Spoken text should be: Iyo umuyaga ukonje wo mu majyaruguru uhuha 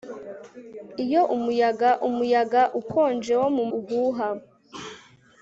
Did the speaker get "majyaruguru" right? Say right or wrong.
wrong